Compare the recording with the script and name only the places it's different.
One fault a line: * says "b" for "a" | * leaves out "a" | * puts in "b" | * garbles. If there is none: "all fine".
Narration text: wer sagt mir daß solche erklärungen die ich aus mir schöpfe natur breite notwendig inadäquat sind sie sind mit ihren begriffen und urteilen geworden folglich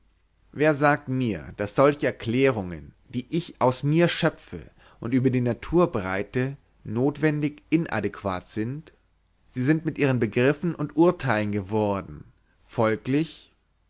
* puts in "und über die"